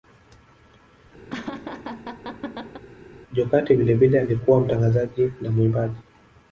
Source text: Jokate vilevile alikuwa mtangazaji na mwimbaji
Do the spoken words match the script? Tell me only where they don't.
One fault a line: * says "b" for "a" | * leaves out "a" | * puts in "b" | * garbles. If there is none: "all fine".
all fine